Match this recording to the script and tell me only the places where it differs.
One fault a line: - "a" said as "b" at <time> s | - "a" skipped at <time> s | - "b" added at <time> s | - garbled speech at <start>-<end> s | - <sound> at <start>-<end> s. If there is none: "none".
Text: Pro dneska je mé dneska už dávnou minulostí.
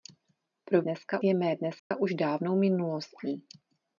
- dropout at 1.8-1.9 s